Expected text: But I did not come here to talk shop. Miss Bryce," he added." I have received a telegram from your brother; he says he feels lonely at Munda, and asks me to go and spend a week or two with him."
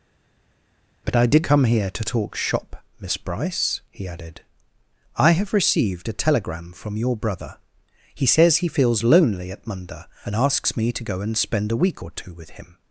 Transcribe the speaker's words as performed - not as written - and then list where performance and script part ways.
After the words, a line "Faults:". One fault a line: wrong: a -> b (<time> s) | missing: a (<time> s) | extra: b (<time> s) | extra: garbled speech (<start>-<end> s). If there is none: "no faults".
But I did come here to talk shop. Miss Bryce," he added." I have received a telegram from your brother; he says he feels lonely at Munda, and asks me to go and spend a week or two with him."
Faults:
missing: not (1.4 s)